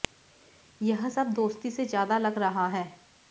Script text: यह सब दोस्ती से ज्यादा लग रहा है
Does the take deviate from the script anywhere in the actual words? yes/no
no